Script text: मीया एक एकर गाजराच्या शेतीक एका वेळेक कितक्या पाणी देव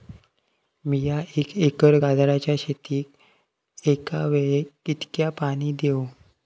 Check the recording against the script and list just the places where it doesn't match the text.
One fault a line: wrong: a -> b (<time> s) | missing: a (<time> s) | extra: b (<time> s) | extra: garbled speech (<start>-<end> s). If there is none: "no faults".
no faults